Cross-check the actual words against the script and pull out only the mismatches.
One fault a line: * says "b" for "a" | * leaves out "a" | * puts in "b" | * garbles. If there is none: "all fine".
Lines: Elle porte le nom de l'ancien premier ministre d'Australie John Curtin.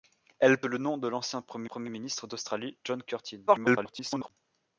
* leaves out "porte"
* puts in "premier"
* garbles